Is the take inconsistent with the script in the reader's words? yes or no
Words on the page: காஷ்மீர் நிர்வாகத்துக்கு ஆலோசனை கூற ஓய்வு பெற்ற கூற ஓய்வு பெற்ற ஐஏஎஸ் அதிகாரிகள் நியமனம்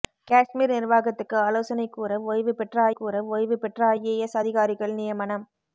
no